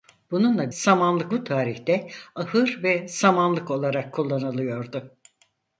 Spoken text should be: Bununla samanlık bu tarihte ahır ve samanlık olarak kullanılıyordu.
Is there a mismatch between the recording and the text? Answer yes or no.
no